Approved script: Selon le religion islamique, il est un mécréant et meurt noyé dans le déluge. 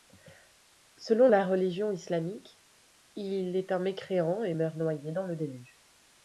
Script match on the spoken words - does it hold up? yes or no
no